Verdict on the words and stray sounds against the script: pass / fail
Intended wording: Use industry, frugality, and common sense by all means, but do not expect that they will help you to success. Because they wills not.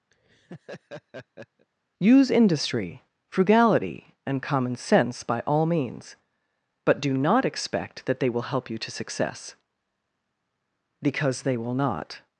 fail